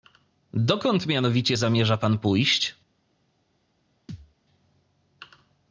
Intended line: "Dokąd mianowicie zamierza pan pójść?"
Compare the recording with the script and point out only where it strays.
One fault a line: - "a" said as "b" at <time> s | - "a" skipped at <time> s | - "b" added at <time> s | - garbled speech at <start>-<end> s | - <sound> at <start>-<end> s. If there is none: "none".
- thud at 4.1-4.3 s